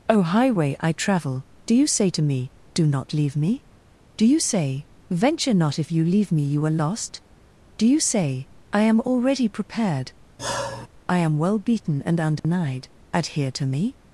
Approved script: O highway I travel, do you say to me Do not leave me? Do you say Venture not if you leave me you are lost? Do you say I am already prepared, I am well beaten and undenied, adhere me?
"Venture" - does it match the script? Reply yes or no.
yes